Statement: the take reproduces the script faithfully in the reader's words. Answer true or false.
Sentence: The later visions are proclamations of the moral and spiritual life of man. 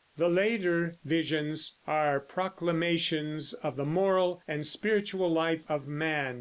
true